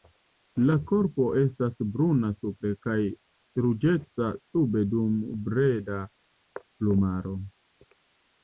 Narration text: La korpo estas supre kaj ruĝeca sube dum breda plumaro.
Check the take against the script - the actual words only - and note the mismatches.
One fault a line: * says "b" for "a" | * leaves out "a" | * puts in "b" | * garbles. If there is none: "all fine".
* puts in "bruna"